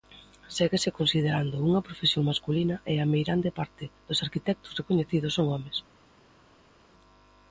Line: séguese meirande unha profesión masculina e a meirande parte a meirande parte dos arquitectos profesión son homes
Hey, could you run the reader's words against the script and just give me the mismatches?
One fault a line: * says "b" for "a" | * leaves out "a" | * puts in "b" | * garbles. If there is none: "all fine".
* says "considerando" for "meirande"
* leaves out "a meirande parte"
* says "recoñecidos" for "profesión"